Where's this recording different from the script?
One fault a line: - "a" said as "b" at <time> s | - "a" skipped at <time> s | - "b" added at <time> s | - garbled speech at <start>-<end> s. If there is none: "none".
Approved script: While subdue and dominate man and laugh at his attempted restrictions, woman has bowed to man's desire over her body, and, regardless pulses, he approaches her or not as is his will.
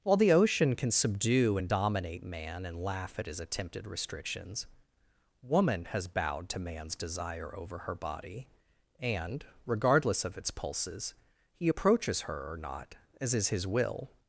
- "the ocean can" added at 0.2 s
- "of its" added at 10.2 s